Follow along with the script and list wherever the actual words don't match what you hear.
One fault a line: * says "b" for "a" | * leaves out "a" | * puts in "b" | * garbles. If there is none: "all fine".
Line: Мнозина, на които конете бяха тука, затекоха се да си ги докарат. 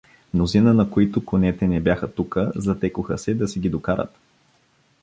* puts in "не"